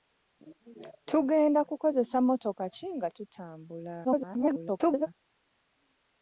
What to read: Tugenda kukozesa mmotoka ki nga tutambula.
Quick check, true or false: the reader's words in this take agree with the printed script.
false